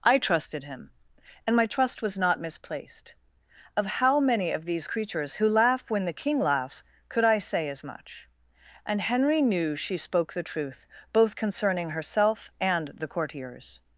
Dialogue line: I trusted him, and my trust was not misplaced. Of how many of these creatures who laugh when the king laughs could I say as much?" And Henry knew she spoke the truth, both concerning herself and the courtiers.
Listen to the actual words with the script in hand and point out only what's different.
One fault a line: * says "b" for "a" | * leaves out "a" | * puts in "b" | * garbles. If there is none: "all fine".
all fine